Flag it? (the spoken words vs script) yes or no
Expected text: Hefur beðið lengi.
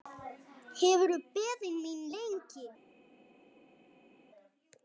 yes